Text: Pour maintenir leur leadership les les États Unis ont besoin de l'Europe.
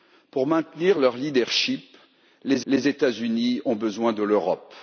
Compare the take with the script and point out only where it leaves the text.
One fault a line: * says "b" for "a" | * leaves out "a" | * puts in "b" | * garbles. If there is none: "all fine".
all fine